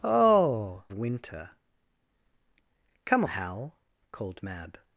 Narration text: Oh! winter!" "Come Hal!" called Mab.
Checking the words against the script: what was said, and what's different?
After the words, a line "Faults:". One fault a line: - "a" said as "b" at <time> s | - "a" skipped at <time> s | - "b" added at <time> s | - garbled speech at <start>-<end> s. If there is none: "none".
Oh! winter!" "Come Hal!" called Mab.
Faults:
none